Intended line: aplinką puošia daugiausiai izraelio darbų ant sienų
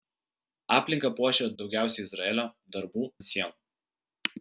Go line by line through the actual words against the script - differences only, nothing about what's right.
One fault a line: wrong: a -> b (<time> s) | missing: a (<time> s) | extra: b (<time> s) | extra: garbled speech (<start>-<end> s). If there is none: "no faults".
no faults